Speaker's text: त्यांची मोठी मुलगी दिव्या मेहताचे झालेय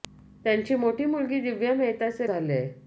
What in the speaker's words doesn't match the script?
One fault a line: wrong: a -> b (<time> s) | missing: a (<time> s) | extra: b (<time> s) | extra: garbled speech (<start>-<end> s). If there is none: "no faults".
no faults